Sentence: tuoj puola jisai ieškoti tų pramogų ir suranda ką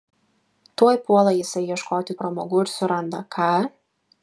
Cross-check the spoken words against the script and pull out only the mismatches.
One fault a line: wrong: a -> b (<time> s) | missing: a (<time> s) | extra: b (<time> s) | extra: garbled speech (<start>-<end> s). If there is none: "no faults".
missing: tų (2.2 s)